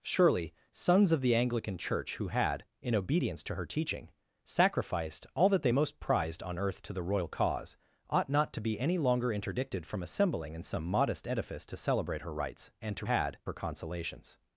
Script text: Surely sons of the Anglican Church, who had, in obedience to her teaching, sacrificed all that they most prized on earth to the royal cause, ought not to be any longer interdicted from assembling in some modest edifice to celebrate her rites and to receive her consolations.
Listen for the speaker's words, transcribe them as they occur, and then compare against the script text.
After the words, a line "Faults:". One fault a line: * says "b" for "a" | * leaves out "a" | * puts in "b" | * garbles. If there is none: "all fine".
Surely sons of the Anglican Church, who had, in obedience to her teaching, sacrificed all that they most prized on earth to the royal cause, ought not to be any longer interdicted from assembling in some modest edifice to celebrate her rites and to had her consolations.
Faults:
* says "had" for "receive"